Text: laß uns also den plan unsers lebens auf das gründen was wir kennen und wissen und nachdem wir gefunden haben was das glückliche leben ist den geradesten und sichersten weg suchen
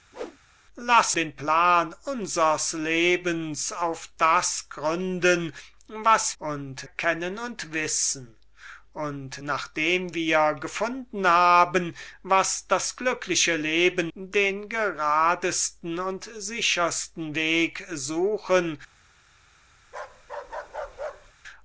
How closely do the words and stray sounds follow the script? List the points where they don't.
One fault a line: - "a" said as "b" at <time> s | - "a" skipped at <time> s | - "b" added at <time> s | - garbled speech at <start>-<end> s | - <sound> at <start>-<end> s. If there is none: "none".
- whoosh at 0.1-0.4 s
- "uns also" skipped at 1.2 s
- "wir" said as "und" at 6.4 s
- "ist" skipped at 14.1 s
- bark at 19.8-21.3 s